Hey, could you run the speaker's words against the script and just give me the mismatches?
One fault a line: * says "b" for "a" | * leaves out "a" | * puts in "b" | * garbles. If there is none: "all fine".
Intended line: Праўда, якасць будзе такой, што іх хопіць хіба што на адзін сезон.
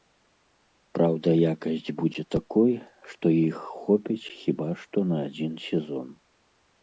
all fine